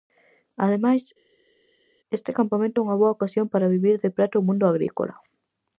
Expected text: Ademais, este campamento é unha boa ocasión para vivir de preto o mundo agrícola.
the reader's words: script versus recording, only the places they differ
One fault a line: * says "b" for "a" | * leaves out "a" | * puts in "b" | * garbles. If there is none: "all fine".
all fine